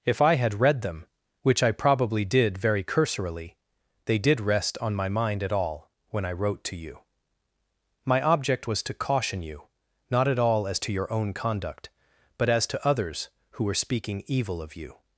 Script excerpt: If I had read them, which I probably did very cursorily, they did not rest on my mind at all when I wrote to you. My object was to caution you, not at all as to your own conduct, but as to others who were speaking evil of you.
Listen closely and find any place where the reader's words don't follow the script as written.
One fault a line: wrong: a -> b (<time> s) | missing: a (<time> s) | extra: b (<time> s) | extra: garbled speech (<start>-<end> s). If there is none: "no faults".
missing: not (4.4 s)